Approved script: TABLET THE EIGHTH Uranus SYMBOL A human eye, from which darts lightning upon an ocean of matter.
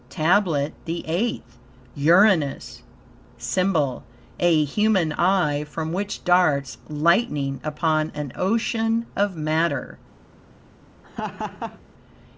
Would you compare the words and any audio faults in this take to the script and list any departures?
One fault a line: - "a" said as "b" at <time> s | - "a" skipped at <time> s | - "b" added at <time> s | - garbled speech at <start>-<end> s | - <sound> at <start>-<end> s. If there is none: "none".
- laugh at 11.0-11.8 s